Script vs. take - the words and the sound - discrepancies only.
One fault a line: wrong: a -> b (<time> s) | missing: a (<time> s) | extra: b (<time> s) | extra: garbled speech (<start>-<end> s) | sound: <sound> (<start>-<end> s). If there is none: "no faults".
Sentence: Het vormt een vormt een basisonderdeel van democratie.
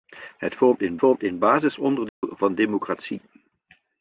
sound: dropout (2.1-2.2 s)